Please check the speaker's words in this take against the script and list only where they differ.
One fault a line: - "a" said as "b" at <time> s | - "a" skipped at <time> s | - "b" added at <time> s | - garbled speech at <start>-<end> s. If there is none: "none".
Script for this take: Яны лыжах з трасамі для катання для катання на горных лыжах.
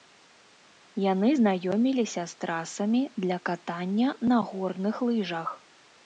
- "лыжах" said as "знаёміліся" at 1.4 s
- "для катання" skipped at 4.1 s